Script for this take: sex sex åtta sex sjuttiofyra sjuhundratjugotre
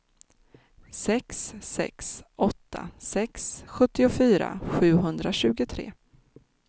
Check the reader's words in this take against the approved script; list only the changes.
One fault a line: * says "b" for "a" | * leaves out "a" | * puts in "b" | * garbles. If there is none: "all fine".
all fine